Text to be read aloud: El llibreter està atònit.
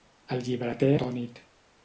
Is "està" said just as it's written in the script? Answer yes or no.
no